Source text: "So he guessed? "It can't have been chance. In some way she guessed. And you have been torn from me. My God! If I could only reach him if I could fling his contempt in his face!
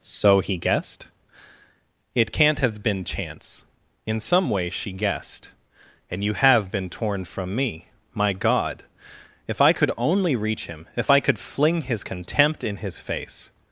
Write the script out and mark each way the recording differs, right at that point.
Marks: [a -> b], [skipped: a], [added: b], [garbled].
"So he guessed? "It can't have been chance. In some way she guessed. And you have been torn from me. My God! If I could only reach him if I could fling his contempt in his face!